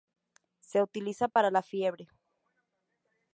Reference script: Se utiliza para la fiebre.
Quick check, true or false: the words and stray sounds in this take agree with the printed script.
false